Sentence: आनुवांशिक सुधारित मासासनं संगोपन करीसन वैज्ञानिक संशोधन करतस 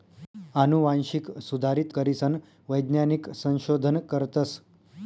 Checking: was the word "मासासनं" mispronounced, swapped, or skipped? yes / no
yes